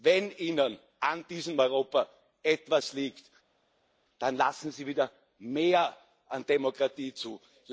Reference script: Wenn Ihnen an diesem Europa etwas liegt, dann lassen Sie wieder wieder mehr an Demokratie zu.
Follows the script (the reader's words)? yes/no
no